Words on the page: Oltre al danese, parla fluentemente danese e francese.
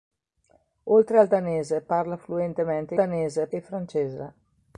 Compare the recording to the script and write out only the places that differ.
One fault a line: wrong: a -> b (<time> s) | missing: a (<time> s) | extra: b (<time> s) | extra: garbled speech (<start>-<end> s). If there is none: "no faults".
no faults